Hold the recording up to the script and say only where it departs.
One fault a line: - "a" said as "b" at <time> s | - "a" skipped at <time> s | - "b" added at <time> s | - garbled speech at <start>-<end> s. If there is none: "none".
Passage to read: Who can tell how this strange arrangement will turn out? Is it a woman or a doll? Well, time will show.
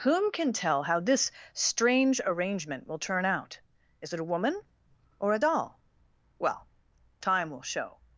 - "Who" said as "Whom" at 0.0 s